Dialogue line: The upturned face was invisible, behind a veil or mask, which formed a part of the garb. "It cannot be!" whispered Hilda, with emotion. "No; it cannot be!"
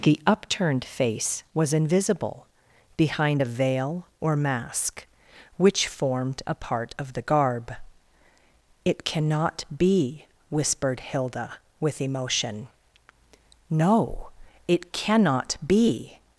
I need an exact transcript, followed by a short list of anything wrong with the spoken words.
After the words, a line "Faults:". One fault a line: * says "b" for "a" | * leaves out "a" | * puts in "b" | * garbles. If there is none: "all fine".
The upturned face was invisible, behind a veil or mask, which formed a part of the garb. "It cannot be!" whispered Hilda, with emotion. "No; it cannot be!"
Faults:
all fine